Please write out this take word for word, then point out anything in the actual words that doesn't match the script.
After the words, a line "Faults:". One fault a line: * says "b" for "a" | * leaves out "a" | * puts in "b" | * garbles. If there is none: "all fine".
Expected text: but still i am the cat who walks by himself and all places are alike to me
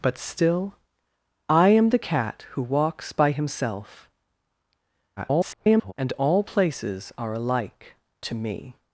but still i am the cat who walks by himself [garbled] and all places are alike to me
Faults:
* garbles